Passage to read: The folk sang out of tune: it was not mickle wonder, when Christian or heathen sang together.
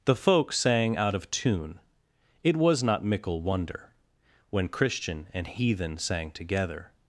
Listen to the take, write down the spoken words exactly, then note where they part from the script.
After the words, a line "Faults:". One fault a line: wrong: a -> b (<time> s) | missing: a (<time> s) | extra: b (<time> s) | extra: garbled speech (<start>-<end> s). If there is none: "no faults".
The folk sang out of tune: it was not mickle wonder, when Christian and heathen sang together.
Faults:
wrong: or -> and (5.3 s)